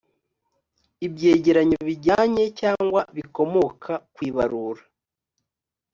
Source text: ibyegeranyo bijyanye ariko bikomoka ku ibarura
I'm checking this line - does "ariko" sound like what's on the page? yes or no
no